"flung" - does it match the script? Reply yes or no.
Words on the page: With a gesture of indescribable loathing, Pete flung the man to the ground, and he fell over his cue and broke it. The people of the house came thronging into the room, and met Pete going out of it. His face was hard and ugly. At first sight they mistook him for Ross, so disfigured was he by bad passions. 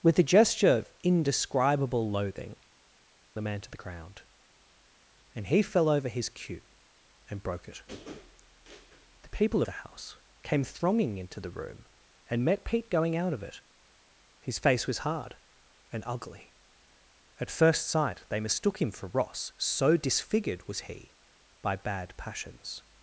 no